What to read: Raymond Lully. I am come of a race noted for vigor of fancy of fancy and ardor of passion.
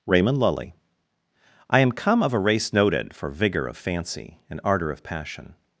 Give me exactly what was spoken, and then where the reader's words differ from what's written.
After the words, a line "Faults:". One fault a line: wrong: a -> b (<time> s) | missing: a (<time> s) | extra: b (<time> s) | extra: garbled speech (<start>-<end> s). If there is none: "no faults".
Raymond Lully. I am come of a race noted for vigor of fancy and ardor of passion.
Faults:
missing: of fancy (4.4 s)